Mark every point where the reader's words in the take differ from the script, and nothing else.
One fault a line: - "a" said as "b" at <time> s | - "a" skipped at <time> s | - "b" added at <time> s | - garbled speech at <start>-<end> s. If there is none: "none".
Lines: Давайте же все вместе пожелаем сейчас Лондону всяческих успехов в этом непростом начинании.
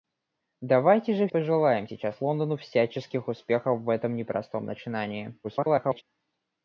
- "все вместе" skipped at 1.3 s
- garbled speech at 5.4-6.0 s